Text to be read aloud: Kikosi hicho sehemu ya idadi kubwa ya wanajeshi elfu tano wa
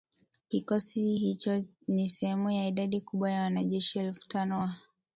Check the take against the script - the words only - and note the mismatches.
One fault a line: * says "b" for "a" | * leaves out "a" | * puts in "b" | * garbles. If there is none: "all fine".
* puts in "ni"